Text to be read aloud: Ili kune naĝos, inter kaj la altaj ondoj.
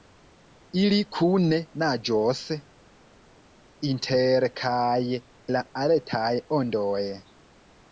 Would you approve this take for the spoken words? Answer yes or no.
yes